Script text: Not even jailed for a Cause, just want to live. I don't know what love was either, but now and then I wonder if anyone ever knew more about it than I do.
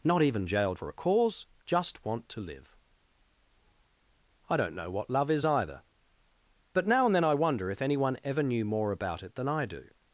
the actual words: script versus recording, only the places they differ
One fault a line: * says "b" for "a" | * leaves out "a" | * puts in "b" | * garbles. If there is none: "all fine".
* says "is" for "was"